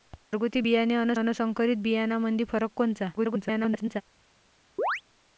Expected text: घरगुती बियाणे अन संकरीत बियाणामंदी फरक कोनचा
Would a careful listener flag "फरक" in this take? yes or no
no